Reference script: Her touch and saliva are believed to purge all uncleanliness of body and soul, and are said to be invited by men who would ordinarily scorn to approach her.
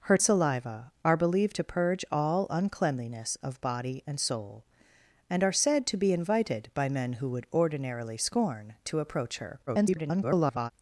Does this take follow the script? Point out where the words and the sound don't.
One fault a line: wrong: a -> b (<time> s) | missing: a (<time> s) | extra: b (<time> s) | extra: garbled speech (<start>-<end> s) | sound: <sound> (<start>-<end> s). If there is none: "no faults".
missing: touch and (0.2 s)
extra: garbled speech (9.7-10.7 s)